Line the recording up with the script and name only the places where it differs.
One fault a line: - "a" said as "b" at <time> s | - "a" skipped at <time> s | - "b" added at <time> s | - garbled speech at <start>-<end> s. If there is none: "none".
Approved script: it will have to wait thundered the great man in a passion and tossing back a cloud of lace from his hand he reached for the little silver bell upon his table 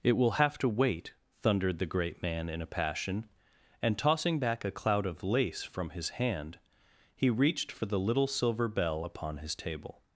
none